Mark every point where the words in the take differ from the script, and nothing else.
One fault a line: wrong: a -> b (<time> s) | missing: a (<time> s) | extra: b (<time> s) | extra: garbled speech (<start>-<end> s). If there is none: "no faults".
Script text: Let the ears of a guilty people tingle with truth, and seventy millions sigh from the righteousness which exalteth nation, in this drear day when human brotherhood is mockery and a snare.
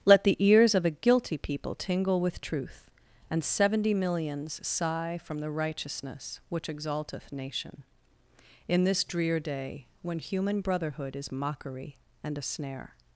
no faults